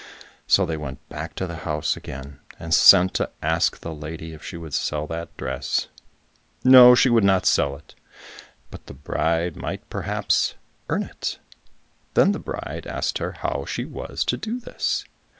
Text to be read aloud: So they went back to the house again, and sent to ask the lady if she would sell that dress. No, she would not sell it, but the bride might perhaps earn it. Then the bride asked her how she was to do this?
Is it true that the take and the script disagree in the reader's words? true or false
false